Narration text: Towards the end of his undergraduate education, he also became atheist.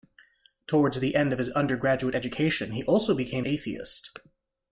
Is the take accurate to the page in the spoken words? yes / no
yes